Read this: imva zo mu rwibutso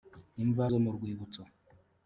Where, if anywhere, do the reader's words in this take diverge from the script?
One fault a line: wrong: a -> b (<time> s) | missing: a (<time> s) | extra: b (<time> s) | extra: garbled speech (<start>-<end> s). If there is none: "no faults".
no faults